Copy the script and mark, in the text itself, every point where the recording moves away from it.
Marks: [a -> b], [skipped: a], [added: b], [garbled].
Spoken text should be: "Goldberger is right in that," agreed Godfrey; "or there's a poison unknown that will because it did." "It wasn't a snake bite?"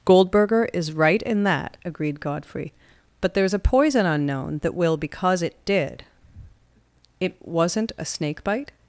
"Goldberger is right in that," agreed Godfrey; ["or -> but] there's a poison unknown that will because it did." "It wasn't a snake bite?"